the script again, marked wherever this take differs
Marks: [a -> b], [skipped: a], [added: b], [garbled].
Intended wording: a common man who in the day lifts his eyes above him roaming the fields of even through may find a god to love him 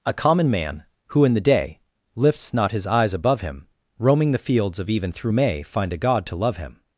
a common man who in the day lifts [added: not] his eyes above him roaming the fields of even through may find a god to love him